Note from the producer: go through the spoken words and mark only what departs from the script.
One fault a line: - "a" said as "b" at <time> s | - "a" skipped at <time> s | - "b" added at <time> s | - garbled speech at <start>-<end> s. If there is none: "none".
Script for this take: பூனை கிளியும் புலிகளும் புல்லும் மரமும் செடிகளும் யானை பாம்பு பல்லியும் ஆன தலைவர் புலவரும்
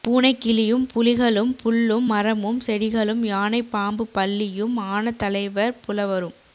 none